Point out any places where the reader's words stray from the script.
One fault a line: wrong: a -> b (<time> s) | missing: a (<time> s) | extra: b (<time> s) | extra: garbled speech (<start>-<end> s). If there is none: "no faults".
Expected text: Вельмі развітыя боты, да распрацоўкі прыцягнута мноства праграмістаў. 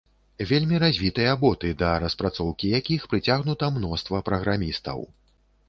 extra: якіх (2.8 s)